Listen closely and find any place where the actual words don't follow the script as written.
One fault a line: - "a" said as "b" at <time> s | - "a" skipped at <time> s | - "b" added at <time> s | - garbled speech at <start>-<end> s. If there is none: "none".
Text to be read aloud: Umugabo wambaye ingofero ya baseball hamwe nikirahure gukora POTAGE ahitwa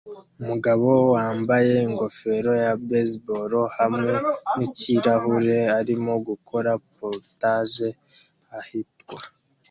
- "arimo" added at 5.8 s